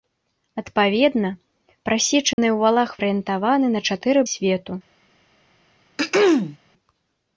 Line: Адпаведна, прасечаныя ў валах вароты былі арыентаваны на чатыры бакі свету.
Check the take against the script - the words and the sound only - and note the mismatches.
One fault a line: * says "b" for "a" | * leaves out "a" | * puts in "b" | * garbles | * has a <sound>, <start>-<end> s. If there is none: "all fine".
* has a dropout, 2.3-2.4 s
* leaves out "вароты былі"
* leaves out "бакі"
* has a throat clearing, 6.0-6.6 s